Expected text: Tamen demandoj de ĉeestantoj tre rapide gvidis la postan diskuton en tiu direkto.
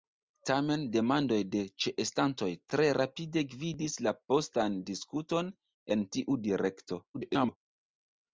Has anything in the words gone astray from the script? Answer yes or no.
yes